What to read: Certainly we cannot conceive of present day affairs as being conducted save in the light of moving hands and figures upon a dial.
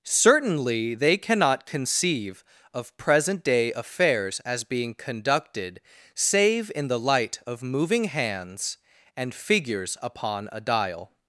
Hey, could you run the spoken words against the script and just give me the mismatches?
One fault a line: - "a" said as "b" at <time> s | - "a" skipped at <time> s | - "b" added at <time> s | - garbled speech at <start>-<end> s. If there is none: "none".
- "we" said as "they" at 0.9 s